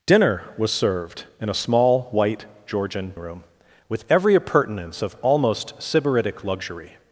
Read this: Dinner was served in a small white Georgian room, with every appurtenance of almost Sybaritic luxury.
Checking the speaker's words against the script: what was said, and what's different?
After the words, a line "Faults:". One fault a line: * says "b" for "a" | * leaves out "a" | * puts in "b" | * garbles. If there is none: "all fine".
Dinner was served in a small white Georgian room, with every appurtenance of almost Sybaritic luxury.
Faults:
all fine